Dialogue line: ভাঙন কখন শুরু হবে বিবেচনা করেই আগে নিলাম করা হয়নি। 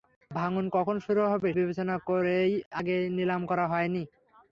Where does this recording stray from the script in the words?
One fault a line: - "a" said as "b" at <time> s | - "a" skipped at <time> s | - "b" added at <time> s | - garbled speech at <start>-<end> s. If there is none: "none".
none